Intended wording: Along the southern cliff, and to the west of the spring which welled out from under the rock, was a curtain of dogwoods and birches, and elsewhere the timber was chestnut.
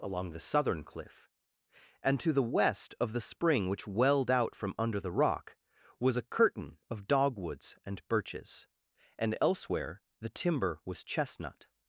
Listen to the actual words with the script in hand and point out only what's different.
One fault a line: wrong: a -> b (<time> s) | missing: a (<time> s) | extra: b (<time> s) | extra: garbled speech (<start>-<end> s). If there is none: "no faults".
no faults